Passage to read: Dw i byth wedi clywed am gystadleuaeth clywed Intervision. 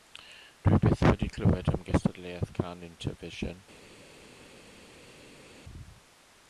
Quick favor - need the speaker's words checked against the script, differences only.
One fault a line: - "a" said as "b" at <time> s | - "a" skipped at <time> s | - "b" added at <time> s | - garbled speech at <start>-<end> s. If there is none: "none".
- "clywed" said as "cân" at 2.6 s